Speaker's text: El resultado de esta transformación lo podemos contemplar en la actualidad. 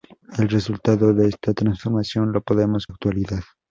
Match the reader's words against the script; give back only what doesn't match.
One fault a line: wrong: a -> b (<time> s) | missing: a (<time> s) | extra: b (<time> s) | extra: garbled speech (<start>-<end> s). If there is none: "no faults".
missing: contemplar en la (2.9 s)